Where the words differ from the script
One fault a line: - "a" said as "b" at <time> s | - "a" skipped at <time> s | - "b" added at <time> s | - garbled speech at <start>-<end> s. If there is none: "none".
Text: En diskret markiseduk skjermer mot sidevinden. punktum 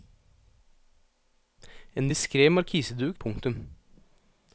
- "skjermer mot sidevinden" skipped at 3.2 s